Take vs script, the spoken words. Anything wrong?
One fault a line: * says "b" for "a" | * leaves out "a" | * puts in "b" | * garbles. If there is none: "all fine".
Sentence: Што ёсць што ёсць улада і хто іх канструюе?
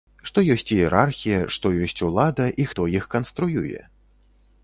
* puts in "іерархія"